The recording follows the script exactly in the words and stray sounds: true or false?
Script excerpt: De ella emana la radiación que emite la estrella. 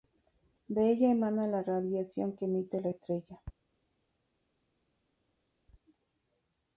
true